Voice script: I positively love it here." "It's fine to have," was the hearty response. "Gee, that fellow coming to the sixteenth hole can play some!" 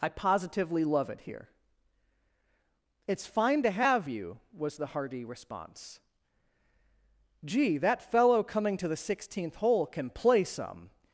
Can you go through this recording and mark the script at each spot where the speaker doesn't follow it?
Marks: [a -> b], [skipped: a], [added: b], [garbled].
I positively love it here." "It's fine to have," [added: you] was the hearty response. "Gee, that fellow coming to the sixteenth hole can play some!"